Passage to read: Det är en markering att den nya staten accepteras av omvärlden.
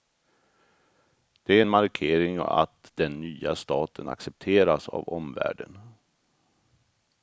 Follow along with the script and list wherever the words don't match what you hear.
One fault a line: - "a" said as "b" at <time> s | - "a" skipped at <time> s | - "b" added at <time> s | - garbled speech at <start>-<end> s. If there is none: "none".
none